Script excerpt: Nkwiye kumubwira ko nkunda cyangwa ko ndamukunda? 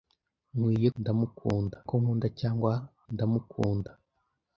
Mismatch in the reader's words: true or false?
true